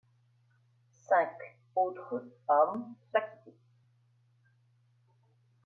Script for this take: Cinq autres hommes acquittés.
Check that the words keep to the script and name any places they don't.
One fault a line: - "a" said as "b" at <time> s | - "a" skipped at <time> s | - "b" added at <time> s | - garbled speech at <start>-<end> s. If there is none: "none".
none